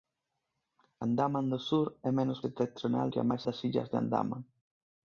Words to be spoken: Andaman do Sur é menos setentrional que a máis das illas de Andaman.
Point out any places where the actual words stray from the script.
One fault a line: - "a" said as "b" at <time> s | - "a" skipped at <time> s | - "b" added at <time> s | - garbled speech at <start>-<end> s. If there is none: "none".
none